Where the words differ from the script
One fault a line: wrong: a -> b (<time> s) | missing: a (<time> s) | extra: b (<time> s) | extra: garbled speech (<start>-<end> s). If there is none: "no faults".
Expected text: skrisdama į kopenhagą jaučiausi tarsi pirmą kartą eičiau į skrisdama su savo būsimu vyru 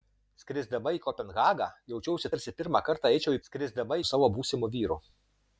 no faults